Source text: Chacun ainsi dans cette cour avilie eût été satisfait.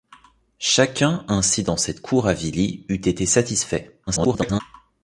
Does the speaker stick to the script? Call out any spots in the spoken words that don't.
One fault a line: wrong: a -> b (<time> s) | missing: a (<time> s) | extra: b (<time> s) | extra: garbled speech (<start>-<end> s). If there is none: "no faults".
extra: garbled speech (4.1-4.6 s)